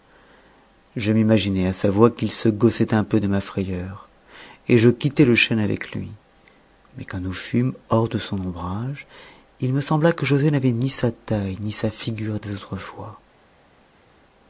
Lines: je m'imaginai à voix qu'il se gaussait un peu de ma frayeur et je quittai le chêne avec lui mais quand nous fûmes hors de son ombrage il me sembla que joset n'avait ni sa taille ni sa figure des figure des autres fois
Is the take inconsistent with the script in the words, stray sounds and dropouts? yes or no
yes